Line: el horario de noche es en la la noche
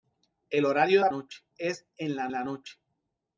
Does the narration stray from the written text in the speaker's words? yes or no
no